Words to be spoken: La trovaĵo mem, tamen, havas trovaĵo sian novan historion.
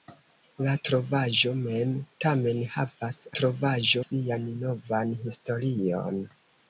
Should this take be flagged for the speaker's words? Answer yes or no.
no